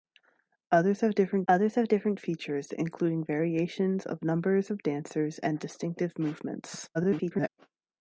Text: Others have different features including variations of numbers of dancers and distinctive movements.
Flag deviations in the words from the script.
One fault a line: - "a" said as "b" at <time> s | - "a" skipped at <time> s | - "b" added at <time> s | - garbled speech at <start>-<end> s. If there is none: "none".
- "others have different" added at 1.5 s
- garbled speech at 6.9-7.5 s